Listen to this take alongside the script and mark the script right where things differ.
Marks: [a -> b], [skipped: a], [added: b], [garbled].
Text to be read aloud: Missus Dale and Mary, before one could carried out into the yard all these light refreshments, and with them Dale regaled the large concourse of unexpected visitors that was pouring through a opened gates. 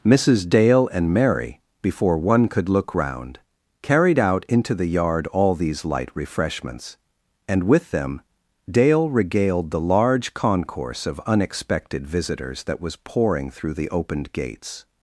Missus Dale and Mary, before one could [added: look round] carried out into the yard all these light refreshments, and with them Dale regaled the large concourse of unexpected visitors that was pouring through [a -> the] opened gates.